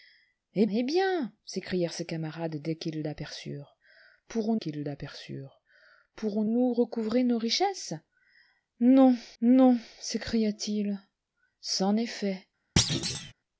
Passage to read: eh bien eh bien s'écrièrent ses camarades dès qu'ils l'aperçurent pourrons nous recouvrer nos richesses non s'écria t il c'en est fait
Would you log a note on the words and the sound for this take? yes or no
yes